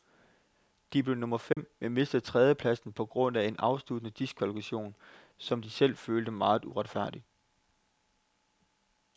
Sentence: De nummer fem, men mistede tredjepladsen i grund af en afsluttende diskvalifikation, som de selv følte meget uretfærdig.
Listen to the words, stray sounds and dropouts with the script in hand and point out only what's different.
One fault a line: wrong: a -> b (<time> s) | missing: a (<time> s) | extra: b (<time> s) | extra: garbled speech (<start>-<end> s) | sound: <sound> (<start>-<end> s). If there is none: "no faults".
extra: blev (1.0 s)
sound: dropout (1.5-1.6 s)
wrong: i -> på (2.9 s)